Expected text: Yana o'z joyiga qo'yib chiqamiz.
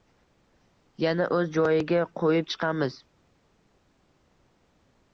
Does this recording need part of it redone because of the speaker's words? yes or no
no